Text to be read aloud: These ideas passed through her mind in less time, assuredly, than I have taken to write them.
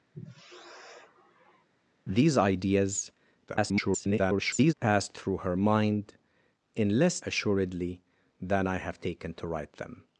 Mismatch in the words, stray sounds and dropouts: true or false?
true